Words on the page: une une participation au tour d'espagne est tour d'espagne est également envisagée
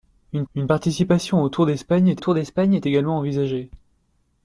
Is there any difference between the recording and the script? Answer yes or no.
no